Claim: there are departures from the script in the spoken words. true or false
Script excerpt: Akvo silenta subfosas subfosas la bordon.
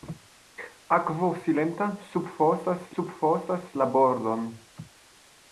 false